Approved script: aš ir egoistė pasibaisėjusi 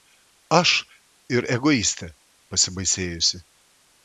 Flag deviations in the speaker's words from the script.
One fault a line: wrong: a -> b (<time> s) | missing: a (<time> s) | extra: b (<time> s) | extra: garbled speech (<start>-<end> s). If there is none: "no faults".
no faults